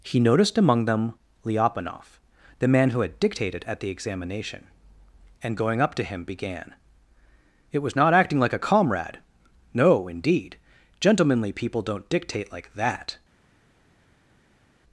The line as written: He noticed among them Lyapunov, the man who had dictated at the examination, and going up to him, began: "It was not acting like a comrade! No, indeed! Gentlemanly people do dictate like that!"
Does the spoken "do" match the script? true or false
false